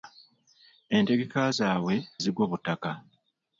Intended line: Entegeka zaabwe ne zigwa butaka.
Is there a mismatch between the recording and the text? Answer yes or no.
yes